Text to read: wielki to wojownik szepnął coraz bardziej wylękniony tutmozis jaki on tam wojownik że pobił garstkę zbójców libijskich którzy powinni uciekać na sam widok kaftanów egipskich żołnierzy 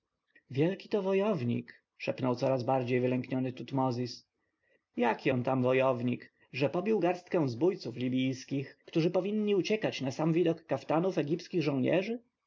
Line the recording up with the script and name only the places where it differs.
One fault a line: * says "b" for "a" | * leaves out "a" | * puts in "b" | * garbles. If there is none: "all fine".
all fine